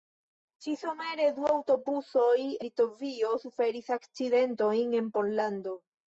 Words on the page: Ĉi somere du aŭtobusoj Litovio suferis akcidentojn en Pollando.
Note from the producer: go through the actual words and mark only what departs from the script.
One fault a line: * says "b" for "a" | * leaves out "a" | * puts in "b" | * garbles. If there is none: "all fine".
all fine